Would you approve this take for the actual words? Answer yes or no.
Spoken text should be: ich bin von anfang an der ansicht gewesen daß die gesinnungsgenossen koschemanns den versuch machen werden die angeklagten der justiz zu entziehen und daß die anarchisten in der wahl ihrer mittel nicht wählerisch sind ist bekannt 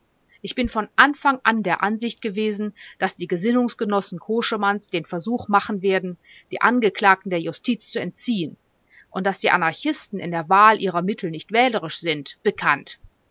no